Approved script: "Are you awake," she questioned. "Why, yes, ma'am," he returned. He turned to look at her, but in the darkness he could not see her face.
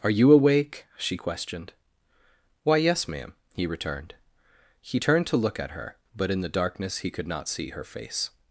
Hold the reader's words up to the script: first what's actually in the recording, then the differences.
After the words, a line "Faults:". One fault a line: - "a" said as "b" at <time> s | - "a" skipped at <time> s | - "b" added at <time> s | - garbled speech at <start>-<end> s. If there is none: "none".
"Are you awake," she questioned. "Why, yes, ma'am," he returned. He turned to look at her, but in the darkness he could not see her face.
Faults:
none